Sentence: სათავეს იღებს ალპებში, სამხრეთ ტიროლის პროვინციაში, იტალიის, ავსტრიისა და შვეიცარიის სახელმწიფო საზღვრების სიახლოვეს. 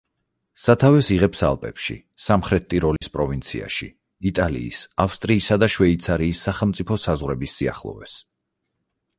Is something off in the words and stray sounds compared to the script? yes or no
yes